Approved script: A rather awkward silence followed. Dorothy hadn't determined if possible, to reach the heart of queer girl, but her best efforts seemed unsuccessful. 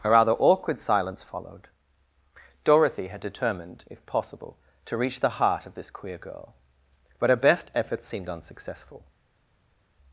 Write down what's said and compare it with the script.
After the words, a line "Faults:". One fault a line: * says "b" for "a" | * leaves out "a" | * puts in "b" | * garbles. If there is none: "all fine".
A rather awkward silence followed. Dorothy had determined if possible, to reach the heart of this queer girl, but her best efforts seemed unsuccessful.
Faults:
* says "had" for "hadn't"
* puts in "this"